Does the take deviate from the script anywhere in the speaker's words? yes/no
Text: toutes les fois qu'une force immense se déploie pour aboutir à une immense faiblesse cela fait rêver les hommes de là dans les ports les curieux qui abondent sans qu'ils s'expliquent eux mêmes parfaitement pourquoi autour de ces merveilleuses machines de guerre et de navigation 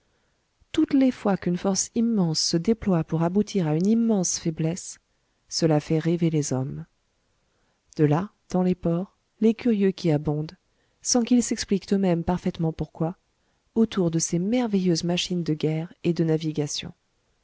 no